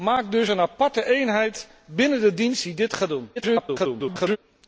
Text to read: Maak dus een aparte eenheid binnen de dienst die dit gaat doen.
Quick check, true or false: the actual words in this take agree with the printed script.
false